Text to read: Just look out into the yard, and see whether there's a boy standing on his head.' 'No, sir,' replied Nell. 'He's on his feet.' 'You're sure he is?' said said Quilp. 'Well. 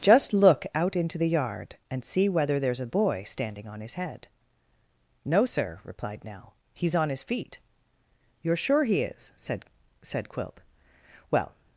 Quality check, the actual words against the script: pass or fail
pass